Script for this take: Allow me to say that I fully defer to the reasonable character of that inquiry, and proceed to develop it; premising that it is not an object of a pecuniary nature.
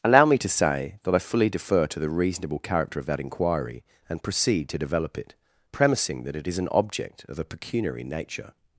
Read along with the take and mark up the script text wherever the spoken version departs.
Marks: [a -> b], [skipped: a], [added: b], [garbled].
Allow me to say that I fully defer to the reasonable character of that inquiry, and proceed to develop it; premising that it is [skipped: not] an object of a pecuniary nature.